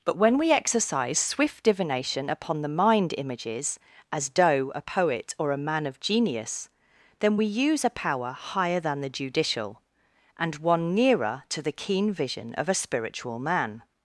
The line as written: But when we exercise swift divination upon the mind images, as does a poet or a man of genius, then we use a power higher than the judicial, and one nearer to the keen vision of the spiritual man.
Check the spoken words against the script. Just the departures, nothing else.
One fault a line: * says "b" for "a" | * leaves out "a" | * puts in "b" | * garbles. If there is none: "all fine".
* says "doe" for "does"
* says "a" for "the"